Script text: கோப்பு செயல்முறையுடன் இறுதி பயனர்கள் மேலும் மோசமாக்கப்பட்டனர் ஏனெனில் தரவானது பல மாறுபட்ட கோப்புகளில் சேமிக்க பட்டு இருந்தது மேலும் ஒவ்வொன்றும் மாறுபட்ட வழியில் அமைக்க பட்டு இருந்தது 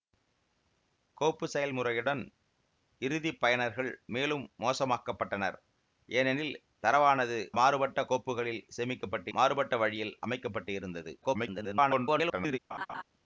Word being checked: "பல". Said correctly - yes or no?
no